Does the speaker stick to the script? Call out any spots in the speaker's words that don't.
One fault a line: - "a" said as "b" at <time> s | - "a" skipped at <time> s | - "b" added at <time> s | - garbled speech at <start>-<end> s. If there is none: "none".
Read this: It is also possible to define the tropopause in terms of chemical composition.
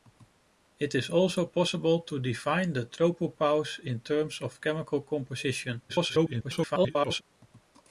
- garbled speech at 5.9-7.2 s